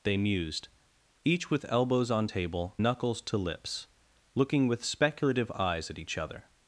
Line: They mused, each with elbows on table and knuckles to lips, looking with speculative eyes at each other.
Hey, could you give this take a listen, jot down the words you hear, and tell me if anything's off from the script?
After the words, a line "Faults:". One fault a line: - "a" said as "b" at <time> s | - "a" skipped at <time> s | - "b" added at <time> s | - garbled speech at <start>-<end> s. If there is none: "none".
They mused, each with elbows on table knuckles to lips, looking with speculative eyes at each other.
Faults:
- "and" skipped at 2.8 s